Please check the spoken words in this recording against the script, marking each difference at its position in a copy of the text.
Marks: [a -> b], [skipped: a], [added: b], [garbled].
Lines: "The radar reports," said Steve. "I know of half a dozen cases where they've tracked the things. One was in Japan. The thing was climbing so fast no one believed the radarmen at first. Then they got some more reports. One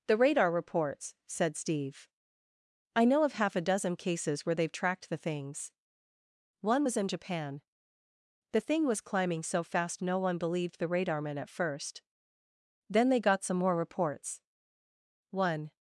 "The radar reports," said Steve. "I know of half a dozen cases where they've tracked the things. One was in Japan. The thing was climbing so fast no one believed the radarmen at first. Then they got some more reports. One